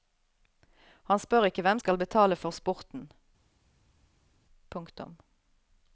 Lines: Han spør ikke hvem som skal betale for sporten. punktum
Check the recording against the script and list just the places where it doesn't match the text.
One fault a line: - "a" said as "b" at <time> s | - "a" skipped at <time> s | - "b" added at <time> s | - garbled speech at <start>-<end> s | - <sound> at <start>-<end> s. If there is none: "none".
- "som" skipped at 1.8 s